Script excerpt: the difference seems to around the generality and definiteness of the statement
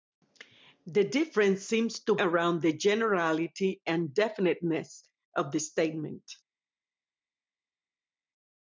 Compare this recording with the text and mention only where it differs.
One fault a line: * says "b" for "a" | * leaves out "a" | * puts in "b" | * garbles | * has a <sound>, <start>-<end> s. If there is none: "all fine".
all fine